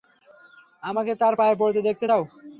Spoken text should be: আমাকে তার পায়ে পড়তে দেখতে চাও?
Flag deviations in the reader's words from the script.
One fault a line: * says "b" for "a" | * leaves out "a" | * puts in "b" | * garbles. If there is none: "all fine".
all fine